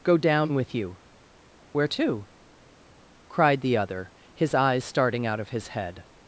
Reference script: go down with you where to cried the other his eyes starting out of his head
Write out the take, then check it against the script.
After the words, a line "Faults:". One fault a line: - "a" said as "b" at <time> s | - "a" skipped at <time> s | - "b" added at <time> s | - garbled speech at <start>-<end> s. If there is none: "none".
go down with you where to cried the other his eyes starting out of his head
Faults:
none